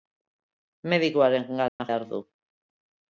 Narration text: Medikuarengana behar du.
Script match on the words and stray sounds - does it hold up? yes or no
no